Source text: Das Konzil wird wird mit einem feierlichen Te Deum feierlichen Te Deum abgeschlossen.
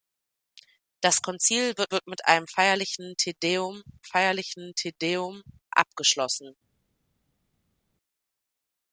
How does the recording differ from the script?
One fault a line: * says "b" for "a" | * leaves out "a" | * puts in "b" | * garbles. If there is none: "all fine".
all fine